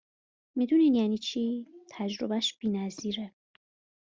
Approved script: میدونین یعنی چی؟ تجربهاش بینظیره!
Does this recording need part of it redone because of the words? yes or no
no